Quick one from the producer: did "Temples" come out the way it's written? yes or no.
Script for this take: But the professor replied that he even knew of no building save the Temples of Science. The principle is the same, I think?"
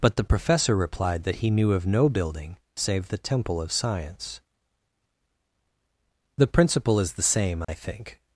no